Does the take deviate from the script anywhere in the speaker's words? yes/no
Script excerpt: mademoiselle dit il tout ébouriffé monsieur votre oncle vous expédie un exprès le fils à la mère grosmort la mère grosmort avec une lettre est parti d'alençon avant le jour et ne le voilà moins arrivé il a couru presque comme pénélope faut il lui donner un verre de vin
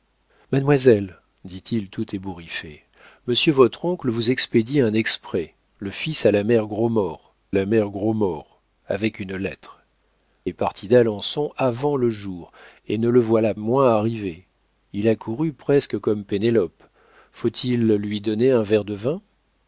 no